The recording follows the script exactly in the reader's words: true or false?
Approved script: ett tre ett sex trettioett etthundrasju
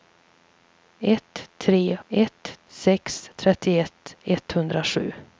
true